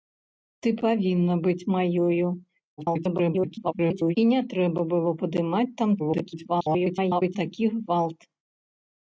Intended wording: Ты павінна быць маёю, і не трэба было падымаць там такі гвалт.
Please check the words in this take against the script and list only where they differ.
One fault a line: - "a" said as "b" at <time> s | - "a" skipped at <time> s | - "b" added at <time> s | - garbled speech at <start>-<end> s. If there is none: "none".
- garbled speech at 2.8-4.2 s
- garbled speech at 6.0-7.4 s